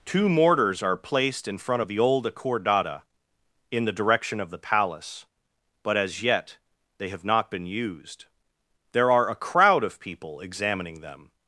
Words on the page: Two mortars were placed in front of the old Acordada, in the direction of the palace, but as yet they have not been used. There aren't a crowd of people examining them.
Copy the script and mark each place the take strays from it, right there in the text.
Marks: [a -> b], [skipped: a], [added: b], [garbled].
Two mortars [were -> are] placed in front of the old Acordada, in the direction of the palace, but as yet they have not been used. There [aren't -> are] a crowd of people examining them.